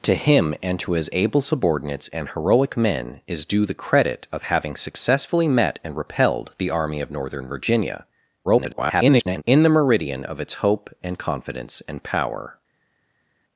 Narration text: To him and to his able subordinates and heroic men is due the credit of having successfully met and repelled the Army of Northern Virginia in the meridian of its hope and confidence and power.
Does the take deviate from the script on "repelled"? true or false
false